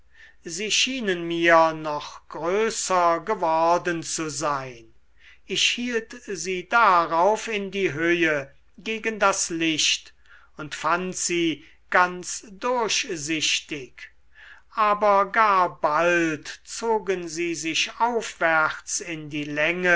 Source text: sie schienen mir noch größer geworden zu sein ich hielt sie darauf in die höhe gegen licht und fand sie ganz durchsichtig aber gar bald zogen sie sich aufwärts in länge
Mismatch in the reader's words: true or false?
true